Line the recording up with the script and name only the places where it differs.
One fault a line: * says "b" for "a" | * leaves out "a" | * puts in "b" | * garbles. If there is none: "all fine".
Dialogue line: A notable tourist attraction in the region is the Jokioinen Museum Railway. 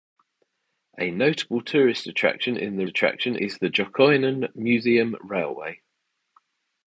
* says "attraction" for "region"